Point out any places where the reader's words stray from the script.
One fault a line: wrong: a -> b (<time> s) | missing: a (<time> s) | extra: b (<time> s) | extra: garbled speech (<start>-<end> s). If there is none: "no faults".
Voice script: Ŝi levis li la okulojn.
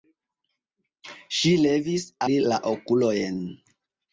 no faults